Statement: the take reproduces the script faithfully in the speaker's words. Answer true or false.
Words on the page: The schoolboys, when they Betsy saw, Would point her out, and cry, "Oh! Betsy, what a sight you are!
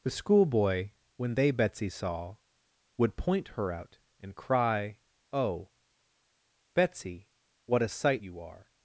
false